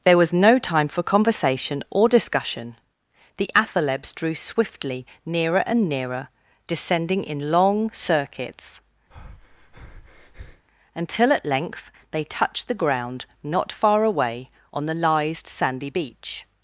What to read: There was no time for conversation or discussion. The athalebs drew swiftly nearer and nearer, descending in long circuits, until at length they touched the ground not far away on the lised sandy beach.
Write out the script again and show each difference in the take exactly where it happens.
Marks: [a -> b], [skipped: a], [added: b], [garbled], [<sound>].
There was no time for conversation or discussion. The athalebs drew swiftly nearer and nearer, descending in long circuits, [breath] until at length they touched the ground not far away on the lised sandy beach.